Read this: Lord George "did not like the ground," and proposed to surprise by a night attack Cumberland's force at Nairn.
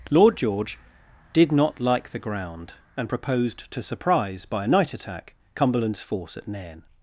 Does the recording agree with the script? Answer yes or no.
yes